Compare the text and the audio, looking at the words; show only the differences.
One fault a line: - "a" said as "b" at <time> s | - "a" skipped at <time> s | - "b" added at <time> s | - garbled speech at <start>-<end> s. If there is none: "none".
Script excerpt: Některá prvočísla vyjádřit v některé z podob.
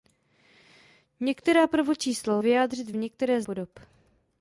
none